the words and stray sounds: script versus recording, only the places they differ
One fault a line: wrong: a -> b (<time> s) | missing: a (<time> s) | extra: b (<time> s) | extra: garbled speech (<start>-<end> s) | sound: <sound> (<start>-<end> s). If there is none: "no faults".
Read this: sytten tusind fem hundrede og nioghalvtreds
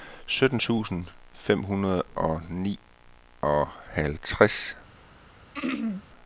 sound: throat clearing (5.5-6.0 s)